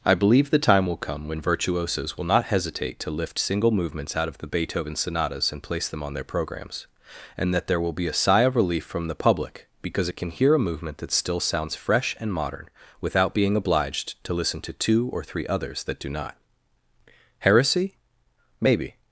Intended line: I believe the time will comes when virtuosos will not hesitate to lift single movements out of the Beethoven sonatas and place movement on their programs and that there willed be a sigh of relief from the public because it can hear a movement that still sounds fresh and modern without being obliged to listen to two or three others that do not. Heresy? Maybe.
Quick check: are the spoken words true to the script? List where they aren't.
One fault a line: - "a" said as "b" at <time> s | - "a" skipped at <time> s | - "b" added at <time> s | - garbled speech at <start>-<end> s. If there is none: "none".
- "comes" said as "come" at 1.0 s
- "movement" said as "them" at 5.9 s
- "willed" said as "will" at 7.8 s